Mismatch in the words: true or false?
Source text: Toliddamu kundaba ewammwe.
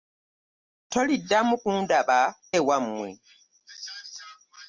false